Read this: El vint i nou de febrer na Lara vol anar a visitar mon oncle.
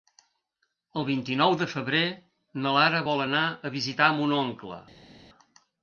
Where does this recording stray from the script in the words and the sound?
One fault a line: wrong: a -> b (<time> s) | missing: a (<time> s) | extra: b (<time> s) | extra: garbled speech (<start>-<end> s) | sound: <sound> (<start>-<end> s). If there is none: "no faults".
no faults